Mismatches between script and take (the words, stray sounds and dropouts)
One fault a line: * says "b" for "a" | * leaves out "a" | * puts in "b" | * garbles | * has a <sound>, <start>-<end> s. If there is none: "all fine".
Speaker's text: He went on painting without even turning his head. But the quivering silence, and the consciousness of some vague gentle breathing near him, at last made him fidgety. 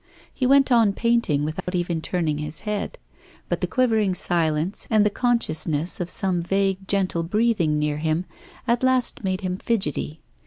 * has a dropout, 1.6-1.7 s